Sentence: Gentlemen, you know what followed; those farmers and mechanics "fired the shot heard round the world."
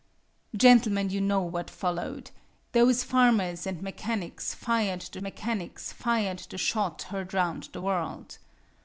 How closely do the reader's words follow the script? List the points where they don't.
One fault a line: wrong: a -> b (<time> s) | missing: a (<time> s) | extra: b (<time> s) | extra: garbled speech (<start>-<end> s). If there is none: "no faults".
extra: mechanics fired the (5.2 s)